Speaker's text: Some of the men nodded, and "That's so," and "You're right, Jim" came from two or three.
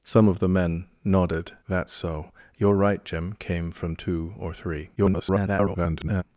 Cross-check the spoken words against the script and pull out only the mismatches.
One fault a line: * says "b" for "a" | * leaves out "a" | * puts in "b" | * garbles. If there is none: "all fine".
* leaves out "and"
* leaves out "and"
* garbles